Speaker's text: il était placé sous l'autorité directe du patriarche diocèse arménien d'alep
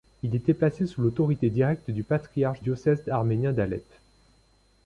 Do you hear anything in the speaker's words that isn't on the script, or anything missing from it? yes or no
no